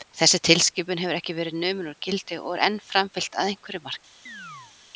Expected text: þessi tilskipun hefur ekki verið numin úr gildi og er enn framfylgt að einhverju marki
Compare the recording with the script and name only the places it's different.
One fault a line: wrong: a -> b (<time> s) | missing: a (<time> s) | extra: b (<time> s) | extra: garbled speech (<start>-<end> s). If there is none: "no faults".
no faults